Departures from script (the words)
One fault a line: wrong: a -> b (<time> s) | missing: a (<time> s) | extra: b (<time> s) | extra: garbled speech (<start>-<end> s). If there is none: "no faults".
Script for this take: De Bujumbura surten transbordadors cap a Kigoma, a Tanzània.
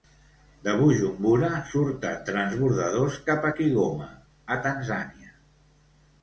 no faults